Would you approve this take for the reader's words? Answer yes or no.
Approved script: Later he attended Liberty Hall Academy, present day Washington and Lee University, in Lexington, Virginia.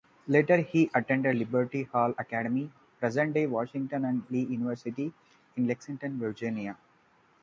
yes